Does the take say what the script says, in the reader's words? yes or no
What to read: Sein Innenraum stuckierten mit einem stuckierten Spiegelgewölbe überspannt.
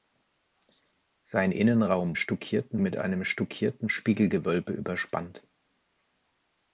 yes